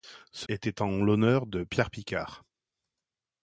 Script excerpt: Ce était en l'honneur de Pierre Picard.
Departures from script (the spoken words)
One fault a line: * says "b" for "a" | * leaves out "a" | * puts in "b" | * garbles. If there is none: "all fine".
all fine